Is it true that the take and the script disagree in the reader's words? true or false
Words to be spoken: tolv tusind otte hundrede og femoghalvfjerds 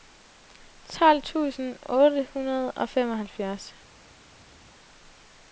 false